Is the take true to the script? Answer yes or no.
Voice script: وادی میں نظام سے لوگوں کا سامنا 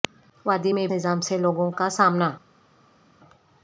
yes